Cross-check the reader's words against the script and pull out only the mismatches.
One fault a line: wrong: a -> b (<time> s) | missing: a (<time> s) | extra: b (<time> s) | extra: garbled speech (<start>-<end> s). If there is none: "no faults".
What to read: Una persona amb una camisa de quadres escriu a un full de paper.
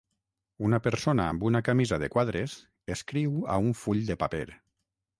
no faults